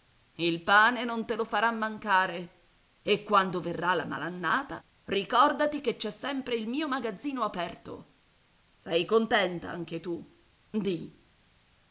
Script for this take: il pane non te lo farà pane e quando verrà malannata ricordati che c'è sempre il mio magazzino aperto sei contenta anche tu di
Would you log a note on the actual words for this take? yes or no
yes